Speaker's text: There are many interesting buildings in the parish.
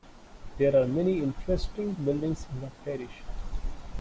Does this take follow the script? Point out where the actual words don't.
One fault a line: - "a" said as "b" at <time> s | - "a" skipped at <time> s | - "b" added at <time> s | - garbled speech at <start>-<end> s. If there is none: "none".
none